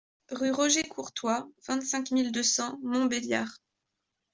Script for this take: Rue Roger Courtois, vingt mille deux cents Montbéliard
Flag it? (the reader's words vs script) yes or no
yes